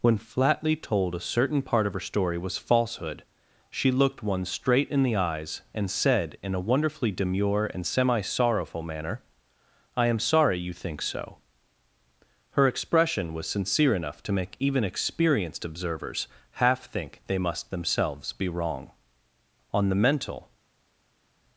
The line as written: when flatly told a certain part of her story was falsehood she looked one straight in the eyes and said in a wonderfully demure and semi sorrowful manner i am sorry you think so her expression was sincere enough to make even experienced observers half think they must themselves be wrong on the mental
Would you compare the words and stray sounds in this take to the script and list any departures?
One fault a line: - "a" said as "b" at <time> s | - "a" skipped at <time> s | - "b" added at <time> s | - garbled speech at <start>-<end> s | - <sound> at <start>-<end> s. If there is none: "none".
none